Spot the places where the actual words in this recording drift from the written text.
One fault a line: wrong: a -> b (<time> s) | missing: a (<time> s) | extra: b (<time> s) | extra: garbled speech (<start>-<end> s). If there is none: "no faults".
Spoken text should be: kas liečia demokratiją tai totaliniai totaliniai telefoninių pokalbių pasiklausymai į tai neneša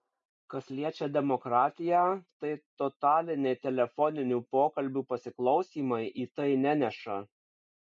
missing: totaliniai (3.6 s)